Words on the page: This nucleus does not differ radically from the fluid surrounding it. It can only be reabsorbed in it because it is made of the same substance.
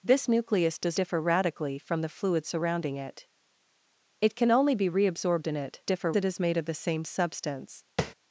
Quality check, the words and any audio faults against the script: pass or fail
fail